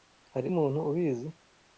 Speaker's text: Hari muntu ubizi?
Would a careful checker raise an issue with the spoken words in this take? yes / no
no